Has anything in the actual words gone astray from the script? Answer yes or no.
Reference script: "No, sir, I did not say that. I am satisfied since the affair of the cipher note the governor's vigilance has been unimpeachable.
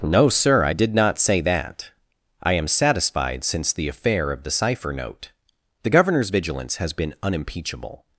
no